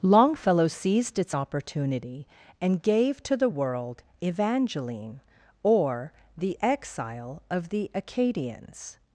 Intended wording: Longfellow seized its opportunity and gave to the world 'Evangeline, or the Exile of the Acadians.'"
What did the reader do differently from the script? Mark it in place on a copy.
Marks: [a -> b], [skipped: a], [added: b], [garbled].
Longfellow seized its opportunity and gave to the world 'Evangeline, or the Exile of the Acadians.'"